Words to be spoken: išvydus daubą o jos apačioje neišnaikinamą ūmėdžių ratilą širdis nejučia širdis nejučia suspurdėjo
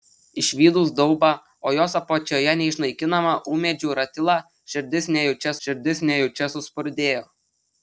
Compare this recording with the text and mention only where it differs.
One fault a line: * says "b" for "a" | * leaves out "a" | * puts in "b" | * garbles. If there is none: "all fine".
all fine